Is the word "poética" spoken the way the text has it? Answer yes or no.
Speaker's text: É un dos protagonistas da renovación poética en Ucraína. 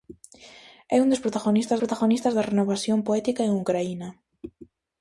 yes